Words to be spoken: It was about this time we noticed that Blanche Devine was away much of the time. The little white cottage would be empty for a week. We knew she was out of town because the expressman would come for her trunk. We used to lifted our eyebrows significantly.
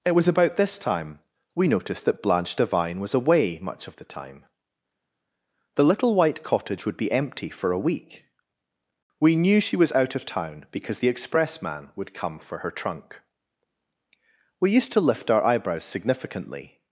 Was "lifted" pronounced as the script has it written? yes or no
no